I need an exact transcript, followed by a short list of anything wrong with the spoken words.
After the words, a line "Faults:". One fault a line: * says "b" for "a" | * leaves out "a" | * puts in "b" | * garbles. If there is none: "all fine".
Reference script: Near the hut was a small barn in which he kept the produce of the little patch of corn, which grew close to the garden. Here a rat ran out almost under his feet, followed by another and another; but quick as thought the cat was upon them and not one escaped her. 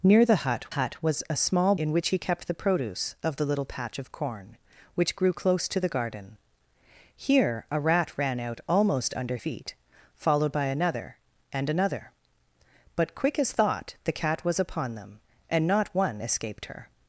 Near the hut hut was a small in which he kept the produce of the little patch of corn, which grew close to the garden. Here a rat ran out almost under feet, followed by another and another; but quick as thought the cat was upon them and not one escaped her.
Faults:
* puts in "hut"
* leaves out "barn"
* leaves out "his"